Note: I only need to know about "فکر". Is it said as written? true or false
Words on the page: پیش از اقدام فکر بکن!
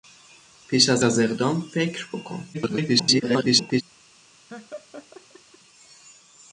true